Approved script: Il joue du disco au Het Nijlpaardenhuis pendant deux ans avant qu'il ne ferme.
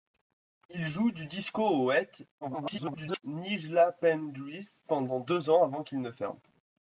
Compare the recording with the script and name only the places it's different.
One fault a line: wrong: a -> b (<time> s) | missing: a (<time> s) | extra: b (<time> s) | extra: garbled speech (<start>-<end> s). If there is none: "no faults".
extra: garbled speech (2.4-3.2 s)